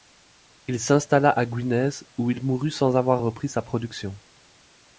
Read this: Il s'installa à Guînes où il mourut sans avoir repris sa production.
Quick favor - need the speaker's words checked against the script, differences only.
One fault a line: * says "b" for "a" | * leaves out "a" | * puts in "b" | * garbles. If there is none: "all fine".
all fine